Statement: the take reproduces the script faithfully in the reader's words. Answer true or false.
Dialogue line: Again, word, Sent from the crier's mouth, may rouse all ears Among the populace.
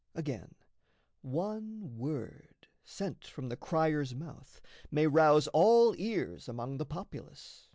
false